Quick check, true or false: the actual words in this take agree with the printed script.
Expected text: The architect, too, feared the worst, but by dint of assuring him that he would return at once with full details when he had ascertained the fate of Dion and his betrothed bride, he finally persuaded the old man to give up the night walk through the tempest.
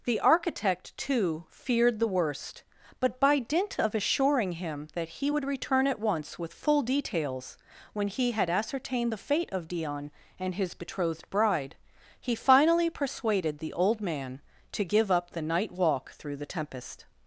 true